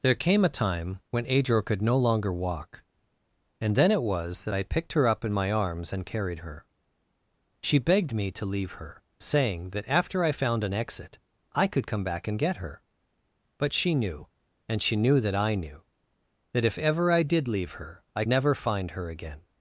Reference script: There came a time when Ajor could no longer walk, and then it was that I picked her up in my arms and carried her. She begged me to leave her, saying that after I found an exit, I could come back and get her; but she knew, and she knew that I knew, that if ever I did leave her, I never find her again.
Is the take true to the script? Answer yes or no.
yes